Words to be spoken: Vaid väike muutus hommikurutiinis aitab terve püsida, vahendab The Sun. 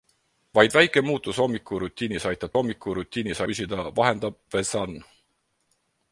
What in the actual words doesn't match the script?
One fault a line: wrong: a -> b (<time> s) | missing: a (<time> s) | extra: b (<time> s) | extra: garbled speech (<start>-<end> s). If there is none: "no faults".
wrong: terve -> hommikurutiinis (2.6 s)